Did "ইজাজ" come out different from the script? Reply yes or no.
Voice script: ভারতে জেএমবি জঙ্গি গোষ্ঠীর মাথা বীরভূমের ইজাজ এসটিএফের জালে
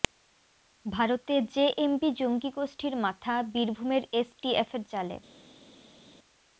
yes